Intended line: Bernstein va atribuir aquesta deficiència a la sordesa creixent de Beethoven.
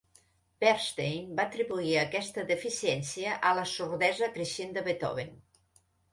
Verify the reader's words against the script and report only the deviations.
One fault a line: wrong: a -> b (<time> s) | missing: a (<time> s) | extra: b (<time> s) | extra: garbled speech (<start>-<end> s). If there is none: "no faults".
no faults